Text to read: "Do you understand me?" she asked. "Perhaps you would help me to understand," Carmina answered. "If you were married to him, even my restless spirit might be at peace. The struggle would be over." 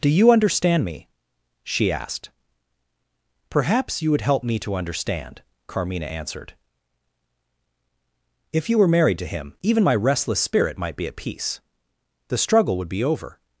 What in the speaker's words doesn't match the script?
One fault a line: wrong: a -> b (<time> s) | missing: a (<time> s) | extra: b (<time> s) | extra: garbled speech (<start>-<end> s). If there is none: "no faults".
no faults